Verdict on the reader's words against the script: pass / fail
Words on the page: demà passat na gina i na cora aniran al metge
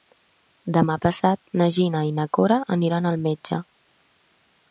pass